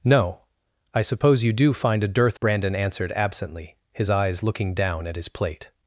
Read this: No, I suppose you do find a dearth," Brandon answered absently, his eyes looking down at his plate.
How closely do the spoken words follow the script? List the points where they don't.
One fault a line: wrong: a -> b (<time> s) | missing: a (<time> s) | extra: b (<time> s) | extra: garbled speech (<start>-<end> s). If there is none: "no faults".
no faults